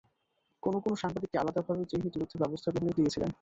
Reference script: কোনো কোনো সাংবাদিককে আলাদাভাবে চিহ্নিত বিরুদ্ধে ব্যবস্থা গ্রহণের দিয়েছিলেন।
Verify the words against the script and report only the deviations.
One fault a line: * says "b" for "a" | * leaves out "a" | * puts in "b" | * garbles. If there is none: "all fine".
all fine